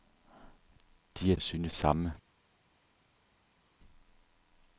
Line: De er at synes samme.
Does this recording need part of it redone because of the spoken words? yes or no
no